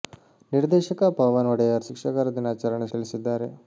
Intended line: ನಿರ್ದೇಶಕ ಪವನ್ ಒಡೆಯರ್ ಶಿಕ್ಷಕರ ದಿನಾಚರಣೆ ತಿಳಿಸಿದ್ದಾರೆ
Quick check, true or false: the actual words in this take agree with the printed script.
true